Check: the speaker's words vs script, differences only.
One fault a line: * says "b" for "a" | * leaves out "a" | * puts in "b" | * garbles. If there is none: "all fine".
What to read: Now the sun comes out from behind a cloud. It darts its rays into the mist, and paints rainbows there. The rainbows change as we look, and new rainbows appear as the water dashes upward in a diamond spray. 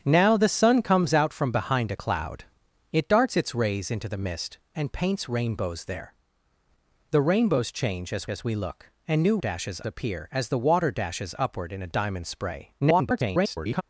* puts in "as"
* says "dashes" for "rainbows"
* garbles